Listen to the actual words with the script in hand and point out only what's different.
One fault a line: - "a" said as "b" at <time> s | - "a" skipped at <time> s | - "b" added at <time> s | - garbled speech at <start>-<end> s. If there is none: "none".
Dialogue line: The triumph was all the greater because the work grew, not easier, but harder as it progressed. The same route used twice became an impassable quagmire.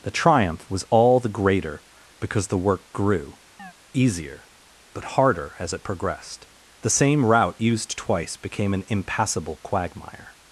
- "not" skipped at 3.4 s